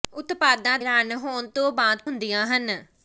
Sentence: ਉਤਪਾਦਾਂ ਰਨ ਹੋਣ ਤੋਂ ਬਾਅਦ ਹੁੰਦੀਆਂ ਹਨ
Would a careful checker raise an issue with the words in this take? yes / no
no